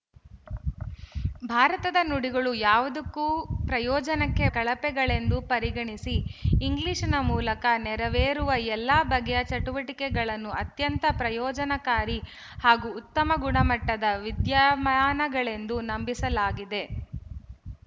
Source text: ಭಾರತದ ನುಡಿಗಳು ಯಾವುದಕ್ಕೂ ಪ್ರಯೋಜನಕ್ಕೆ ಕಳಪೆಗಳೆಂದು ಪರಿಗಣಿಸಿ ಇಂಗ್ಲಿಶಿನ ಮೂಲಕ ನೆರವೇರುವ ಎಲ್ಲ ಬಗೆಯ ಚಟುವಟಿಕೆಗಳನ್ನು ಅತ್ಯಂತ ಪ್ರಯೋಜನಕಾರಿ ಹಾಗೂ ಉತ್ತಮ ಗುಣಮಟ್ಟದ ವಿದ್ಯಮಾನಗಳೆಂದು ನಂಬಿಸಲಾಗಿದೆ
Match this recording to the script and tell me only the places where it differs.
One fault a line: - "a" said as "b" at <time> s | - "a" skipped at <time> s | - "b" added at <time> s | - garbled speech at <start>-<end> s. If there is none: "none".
none